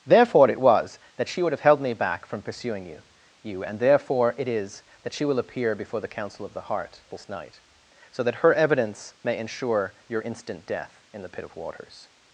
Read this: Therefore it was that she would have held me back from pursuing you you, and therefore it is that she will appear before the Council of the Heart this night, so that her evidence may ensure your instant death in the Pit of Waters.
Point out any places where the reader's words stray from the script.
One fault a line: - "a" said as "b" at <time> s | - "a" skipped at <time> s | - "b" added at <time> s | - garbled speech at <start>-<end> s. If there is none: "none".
none